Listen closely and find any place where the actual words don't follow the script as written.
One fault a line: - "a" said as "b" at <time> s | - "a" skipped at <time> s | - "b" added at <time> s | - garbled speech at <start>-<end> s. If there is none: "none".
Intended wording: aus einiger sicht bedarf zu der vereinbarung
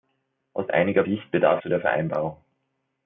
none